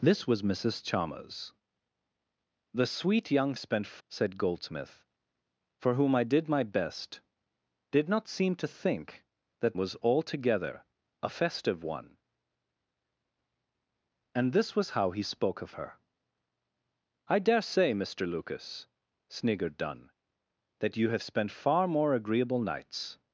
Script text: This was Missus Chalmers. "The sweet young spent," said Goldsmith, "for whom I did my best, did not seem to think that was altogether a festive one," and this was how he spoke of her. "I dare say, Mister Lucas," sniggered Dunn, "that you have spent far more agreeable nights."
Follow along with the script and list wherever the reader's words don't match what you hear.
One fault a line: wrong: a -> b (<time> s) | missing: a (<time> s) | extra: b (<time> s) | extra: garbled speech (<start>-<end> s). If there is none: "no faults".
no faults